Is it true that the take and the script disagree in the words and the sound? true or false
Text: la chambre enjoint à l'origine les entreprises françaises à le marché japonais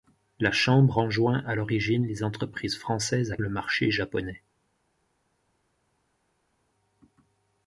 false